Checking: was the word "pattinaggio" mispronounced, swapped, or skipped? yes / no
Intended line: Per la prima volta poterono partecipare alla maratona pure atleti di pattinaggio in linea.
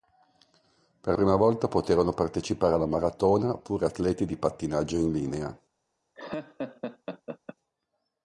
no